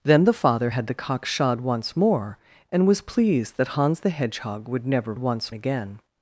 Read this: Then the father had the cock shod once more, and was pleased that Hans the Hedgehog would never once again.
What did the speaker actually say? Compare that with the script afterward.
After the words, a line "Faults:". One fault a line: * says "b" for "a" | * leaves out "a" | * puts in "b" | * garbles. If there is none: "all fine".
Then the father had the cock shod once more, and was pleased that Hans the Hedgehog would never once again.
Faults:
all fine